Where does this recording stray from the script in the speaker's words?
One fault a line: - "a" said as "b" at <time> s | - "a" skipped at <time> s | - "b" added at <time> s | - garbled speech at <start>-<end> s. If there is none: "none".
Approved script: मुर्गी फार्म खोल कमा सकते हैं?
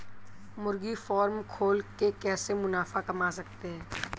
- "के कैसे मुनाफा" added at 2.0 s